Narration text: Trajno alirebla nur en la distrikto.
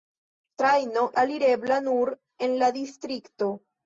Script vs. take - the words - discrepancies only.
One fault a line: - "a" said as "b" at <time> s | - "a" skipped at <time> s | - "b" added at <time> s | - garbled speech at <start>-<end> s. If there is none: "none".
none